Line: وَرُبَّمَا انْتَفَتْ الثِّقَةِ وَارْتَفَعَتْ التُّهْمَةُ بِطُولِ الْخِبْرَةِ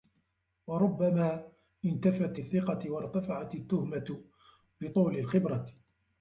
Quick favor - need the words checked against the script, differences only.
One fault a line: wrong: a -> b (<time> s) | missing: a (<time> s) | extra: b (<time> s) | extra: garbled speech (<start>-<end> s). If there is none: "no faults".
no faults